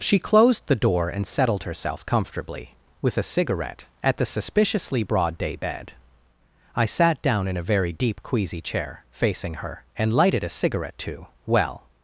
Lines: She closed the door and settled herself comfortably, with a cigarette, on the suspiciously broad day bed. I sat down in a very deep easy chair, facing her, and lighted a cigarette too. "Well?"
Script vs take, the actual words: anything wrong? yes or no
yes